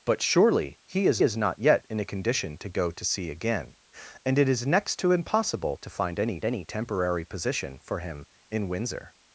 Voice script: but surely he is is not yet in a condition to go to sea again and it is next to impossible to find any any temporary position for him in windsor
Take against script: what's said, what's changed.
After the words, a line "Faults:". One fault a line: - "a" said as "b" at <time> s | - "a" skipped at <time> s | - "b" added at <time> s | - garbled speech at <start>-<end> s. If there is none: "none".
but surely he is is not yet in a condition to go to sea again and it is next to impossible to find any any temporary position for him in windsor
Faults:
none